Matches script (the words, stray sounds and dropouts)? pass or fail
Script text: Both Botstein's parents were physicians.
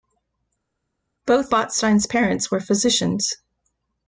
pass